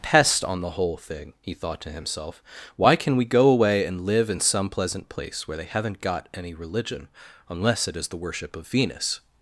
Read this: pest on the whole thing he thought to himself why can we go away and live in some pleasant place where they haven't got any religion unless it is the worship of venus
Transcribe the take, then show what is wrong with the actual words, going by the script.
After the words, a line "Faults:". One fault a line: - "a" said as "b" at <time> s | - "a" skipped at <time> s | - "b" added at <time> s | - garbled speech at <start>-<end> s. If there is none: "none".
pest on the whole thing he thought to himself why can we go away and live in some pleasant place where they haven't got any religion unless it is the worship of venus
Faults:
none